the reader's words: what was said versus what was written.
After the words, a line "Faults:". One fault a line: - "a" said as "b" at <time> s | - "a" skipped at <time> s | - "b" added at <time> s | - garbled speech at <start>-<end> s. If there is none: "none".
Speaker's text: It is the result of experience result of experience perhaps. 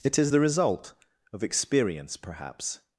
It is the result of experience perhaps.
Faults:
- "result of experience" skipped at 2.2 s